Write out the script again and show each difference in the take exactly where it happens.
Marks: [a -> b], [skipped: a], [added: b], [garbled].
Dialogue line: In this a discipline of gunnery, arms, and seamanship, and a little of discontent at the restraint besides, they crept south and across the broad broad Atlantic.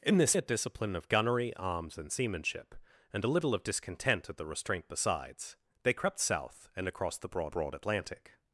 In this a discipline of gunnery, arms, and seamanship, and a little of discontent at the restraint besides, they crept south and across the broad broad Atlantic.